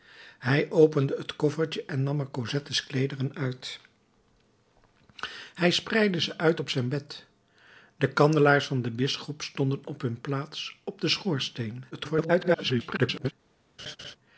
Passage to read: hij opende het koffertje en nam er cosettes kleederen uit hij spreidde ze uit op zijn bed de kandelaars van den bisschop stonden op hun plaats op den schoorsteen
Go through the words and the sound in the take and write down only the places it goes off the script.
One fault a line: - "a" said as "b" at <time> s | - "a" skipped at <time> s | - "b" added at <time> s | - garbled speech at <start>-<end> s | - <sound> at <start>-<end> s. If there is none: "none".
- garbled speech at 11.9-13.3 s
- laugh at 13.8-14.2 s